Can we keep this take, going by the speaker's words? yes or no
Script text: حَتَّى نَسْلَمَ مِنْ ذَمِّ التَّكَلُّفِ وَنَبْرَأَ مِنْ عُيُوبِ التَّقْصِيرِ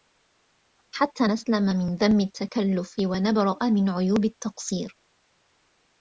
yes